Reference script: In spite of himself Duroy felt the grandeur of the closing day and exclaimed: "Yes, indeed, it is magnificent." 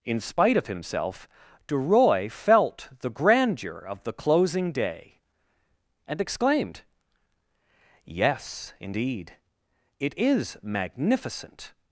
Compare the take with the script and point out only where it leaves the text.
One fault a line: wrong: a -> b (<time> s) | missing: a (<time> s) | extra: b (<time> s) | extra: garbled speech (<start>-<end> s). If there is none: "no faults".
no faults